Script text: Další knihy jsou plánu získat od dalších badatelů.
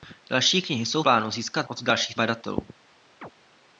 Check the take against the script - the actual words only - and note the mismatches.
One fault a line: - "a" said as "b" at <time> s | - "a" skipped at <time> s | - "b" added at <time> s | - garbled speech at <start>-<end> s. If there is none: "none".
none